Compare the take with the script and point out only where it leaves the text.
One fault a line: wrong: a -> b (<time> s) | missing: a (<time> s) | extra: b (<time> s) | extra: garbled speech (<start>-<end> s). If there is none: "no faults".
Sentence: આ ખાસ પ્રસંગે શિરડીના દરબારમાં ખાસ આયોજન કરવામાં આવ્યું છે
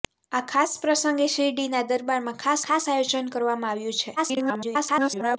extra: ખાસ (2.7 s)
extra: garbled speech (4.2-5.4 s)